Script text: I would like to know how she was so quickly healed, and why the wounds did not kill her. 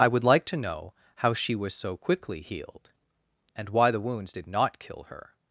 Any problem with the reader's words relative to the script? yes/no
no